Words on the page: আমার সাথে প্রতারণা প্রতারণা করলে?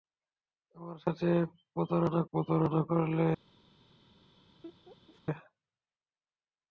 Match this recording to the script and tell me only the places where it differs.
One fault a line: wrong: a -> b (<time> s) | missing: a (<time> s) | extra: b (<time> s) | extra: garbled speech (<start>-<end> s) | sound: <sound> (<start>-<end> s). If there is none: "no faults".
sound: laugh (4.6-5.2 s)